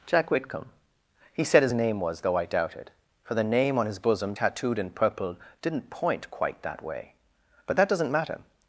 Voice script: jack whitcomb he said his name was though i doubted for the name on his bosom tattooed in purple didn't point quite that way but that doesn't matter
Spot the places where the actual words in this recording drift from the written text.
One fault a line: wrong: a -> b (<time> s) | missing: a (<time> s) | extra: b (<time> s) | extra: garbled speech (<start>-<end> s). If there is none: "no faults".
no faults